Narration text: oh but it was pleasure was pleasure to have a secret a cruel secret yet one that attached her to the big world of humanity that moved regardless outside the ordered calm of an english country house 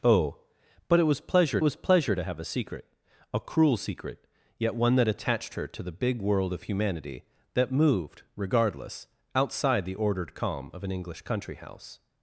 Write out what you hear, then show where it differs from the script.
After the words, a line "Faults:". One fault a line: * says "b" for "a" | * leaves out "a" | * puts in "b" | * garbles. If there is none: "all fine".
oh but it was pleasure was pleasure to have a secret a cruel secret yet one that attached her to the big world of humanity that moved regardless outside the ordered calm of an english country house
Faults:
all fine